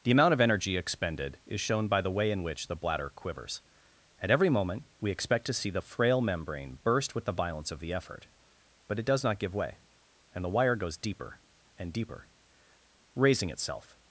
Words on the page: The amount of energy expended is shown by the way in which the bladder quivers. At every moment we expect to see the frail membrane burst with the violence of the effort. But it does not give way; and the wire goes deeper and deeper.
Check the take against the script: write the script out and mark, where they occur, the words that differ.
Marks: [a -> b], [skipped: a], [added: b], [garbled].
The amount of energy expended is shown by the way in which the bladder quivers. At every moment we expect to see the frail membrane burst with the violence of the effort. But it does not give way; and the wire goes deeper and deeper. [added: Raising itself]